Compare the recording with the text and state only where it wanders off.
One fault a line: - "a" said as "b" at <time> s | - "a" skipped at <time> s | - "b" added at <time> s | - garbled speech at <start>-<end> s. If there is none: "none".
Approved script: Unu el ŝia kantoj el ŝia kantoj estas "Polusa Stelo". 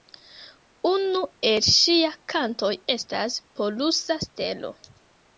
- "el ŝia kantoj" skipped at 2.7 s